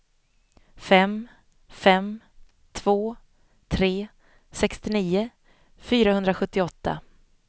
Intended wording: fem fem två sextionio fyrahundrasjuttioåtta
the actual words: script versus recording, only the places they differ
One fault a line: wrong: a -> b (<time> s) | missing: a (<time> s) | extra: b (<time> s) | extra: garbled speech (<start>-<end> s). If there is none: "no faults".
extra: tre (3.7 s)